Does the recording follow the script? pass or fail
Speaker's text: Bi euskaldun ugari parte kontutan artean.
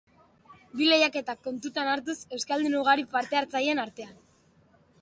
fail